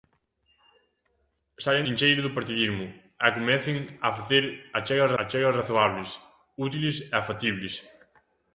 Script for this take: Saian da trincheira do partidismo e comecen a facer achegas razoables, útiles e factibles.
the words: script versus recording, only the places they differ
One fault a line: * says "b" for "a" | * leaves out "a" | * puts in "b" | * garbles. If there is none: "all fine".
* leaves out "da"
* puts in "achegas"